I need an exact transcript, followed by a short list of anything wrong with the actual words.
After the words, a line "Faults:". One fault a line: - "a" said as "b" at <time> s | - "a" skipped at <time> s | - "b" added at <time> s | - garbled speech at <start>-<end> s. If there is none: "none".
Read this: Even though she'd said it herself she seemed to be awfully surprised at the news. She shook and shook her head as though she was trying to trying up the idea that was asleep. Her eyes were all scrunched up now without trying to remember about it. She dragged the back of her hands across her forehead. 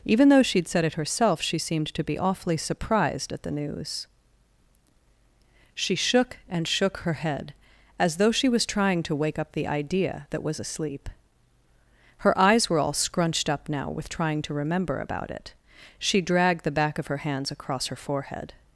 Even though she'd said it herself she seemed to be awfully surprised at the news. She shook and shook her head as though she was trying to wake up the idea that was asleep. Her eyes were all scrunched up now with trying to remember about it. She dragged the back of her hands across her forehead.
Faults:
- "trying" said as "wake" at 9.2 s
- "without" said as "with" at 13.9 s